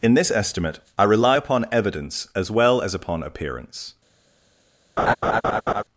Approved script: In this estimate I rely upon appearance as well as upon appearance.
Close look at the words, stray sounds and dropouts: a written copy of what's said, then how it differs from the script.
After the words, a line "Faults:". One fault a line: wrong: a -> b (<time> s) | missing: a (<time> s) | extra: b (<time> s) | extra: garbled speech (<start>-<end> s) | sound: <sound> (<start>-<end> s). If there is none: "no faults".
In this estimate I rely upon evidence as well as upon appearance.
Faults:
wrong: appearance -> evidence (1.7 s)
sound: laugh (5.0-5.8 s)